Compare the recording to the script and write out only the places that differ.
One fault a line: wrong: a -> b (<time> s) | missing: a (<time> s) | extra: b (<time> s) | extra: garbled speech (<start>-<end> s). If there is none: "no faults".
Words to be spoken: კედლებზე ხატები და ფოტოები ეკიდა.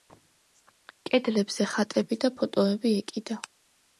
no faults